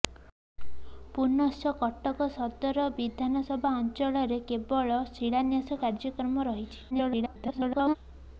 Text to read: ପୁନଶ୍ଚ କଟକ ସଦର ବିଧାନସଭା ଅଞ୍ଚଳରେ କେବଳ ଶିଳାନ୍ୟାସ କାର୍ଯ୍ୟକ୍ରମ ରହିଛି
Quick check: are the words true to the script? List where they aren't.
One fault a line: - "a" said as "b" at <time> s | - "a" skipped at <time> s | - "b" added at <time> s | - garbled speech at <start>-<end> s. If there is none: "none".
- garbled speech at 6.9-8.0 s